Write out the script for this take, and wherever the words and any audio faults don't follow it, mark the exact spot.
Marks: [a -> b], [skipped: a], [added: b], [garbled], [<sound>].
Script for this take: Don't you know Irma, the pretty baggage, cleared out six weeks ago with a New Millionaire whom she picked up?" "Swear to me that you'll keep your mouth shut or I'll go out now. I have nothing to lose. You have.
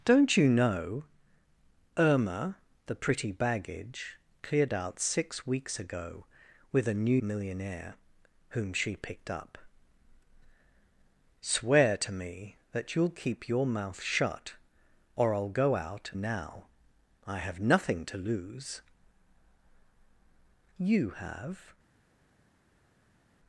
Don't you know Irma, the pretty baggage, cleared out six weeks ago with a New Millionaire whom she picked up?" "Swear to me that you'll keep your mouth shut or I'll go out now. I have nothing to lose. You have.